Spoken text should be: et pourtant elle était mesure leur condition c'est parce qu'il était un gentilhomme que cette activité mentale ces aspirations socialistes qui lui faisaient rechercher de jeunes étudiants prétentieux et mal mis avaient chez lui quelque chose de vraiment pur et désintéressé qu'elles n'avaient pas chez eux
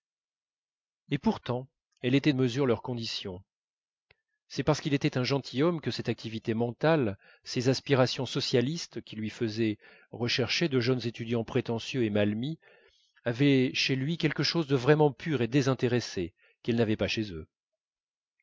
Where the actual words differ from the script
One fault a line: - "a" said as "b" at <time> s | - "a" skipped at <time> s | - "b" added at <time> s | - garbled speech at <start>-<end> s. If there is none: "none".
none